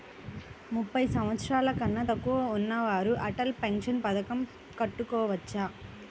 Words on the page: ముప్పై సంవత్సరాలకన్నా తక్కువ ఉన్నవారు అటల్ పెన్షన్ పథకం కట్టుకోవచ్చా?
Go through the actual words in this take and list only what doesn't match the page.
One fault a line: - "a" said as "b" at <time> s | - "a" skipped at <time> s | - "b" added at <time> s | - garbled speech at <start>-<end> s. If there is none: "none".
none